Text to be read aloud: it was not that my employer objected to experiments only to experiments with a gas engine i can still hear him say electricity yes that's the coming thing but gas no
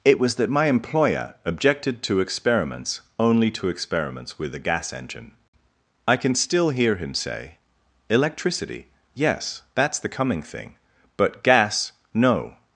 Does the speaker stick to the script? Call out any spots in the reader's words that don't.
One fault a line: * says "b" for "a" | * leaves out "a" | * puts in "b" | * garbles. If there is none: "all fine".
* leaves out "not"